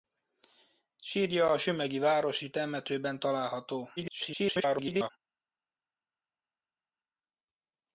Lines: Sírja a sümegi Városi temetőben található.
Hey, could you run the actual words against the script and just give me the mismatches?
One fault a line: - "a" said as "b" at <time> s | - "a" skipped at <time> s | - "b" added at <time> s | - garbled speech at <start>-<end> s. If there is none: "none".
- garbled speech at 4.0-5.1 s